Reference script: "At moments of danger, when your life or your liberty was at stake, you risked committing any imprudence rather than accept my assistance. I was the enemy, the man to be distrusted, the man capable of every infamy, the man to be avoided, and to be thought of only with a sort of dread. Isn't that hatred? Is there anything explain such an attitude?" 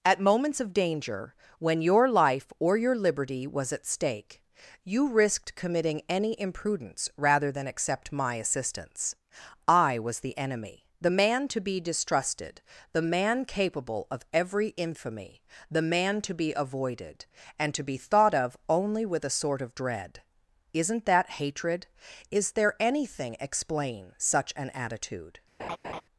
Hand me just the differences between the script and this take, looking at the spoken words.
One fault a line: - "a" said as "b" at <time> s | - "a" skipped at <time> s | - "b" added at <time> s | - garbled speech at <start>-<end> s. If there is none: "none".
none